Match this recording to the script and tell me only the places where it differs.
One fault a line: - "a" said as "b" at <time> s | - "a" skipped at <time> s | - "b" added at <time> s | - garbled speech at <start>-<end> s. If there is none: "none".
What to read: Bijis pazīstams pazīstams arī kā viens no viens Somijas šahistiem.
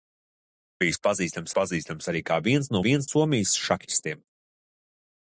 none